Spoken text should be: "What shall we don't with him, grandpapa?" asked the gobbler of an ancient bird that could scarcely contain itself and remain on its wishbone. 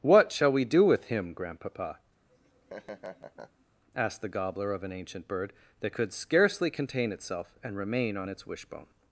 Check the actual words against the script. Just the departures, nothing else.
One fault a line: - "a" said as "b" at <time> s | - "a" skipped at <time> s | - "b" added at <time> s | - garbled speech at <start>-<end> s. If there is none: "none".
- "don't" said as "do" at 0.7 s